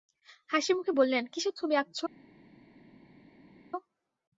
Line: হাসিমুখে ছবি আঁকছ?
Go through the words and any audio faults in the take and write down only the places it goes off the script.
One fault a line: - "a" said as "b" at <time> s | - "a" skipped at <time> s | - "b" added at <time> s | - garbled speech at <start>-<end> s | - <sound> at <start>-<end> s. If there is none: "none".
- "বললেন কিসের" added at 1.0 s